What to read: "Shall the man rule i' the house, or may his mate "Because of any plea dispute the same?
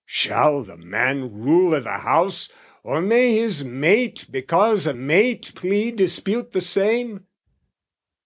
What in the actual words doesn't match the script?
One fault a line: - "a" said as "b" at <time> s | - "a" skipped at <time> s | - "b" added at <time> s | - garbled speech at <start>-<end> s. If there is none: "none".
- "any" said as "mate" at 4.9 s